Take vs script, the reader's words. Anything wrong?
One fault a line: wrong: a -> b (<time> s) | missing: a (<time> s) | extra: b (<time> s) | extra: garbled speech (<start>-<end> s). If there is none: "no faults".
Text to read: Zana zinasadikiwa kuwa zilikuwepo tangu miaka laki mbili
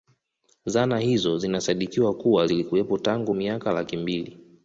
extra: hizo (1.0 s)